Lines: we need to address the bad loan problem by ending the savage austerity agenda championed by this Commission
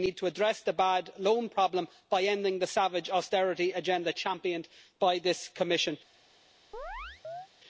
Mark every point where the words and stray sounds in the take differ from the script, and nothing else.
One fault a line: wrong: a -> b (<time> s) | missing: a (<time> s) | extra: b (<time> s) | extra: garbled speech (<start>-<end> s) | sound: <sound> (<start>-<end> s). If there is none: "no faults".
sound: chirp (6.7-7.5 s)